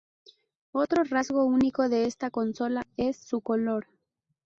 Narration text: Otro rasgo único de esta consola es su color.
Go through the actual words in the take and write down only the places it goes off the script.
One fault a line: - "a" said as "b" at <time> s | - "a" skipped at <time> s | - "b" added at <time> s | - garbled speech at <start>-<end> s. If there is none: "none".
none